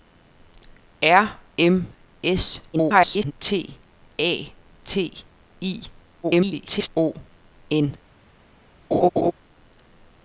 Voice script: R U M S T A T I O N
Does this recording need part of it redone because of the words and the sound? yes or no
yes